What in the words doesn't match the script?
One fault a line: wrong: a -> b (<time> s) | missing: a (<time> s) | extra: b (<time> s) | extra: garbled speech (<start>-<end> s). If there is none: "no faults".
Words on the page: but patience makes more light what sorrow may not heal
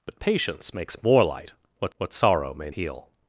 extra: what (2.0 s)
missing: not (2.7 s)